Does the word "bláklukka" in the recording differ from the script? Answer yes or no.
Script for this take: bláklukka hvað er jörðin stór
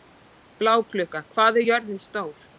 no